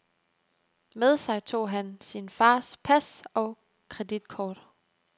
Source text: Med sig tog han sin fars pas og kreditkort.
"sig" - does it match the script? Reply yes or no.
yes